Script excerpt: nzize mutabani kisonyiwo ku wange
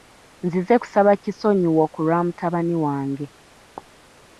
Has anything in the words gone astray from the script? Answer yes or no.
yes